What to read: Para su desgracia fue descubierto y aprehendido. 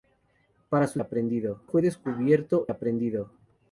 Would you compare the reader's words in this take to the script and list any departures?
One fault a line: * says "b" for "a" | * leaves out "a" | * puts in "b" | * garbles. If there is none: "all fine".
* says "aprehendido" for "desgracia"
* leaves out "y"